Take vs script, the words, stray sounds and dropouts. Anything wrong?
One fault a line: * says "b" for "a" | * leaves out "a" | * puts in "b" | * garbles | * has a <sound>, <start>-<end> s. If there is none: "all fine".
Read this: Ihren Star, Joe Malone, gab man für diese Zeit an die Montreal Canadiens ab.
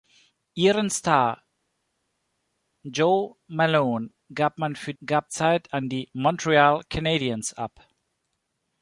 * says "gab" for "diese"